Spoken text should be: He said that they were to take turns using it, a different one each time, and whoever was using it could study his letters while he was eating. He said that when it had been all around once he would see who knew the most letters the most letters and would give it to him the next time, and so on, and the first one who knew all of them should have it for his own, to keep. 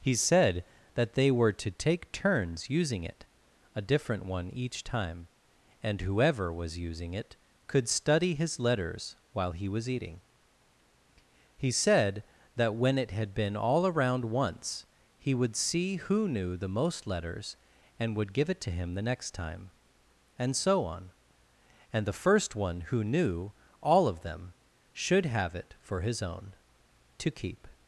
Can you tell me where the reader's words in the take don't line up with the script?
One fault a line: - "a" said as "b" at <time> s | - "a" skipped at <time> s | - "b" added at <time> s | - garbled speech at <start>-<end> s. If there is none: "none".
- "the most letters" skipped at 17.6 s